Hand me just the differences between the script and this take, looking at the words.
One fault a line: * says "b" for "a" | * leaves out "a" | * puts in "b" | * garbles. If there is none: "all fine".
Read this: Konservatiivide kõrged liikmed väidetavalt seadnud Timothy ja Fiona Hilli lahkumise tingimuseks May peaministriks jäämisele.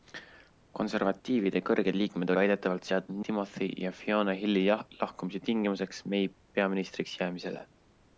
all fine